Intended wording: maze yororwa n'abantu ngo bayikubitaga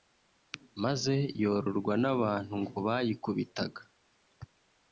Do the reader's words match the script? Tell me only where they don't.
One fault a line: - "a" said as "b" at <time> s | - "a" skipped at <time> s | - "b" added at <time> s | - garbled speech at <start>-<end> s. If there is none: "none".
none